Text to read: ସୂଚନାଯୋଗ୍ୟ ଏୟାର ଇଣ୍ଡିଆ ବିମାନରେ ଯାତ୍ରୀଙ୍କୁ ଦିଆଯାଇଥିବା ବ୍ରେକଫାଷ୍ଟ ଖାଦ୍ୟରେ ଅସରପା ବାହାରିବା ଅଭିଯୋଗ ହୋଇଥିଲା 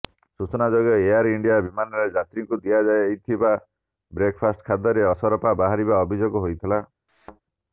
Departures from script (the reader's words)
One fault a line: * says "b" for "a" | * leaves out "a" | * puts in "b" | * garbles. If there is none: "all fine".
all fine